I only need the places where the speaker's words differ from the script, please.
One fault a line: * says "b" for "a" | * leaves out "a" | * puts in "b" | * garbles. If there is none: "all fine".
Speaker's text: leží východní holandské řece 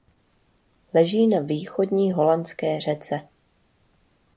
* puts in "na"